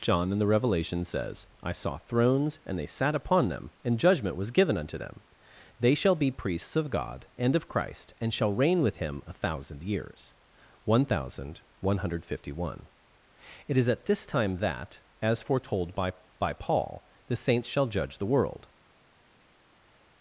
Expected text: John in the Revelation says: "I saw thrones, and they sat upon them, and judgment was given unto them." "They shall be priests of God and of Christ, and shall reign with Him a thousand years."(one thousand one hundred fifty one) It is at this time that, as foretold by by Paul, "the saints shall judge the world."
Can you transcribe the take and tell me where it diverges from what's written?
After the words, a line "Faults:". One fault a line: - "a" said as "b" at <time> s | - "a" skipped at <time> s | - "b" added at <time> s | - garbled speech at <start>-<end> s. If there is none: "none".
John in the Revelation says: "I saw thrones, and they sat upon them, and judgment was given unto them." "They shall be priests of God and of Christ, and shall reign with Him a thousand years."(one thousand one hundred fifty one) It is at this time that, as foretold by by Paul, "the saints shall judge the world."
Faults:
none